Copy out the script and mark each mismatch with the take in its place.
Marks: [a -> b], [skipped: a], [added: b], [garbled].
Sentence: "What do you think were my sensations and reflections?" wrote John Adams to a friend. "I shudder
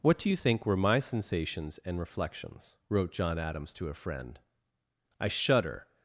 "What do you think were my sensations and reflections?" wrote John Adams to a friend. "I shudder